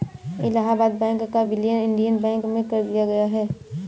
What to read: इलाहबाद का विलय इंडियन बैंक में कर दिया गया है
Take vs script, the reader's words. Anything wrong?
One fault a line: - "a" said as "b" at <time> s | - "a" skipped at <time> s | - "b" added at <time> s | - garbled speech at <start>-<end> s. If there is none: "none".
- "बैंक" added at 1.0 s